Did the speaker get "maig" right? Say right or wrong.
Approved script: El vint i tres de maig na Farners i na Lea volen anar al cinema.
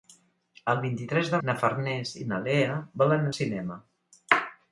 wrong